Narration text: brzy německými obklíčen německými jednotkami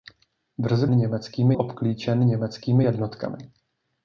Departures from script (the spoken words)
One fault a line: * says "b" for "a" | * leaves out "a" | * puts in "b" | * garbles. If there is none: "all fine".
all fine